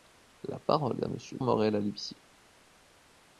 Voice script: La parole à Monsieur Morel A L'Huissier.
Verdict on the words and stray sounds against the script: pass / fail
pass